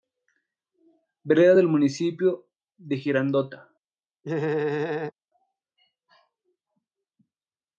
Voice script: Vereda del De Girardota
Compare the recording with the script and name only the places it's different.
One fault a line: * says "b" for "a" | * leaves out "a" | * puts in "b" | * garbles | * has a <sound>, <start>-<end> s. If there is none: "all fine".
* puts in "Municipio"
* has a laugh, 4.2-5.1 s